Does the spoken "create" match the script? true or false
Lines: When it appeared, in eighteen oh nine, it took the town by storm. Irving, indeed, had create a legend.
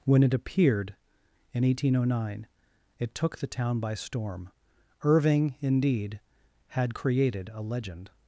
false